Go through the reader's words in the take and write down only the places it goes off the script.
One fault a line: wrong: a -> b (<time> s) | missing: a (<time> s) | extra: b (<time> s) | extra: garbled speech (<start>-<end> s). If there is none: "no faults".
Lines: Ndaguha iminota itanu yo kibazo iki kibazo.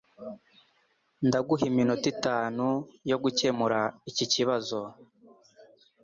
wrong: kibazo -> gukemura (3.2 s)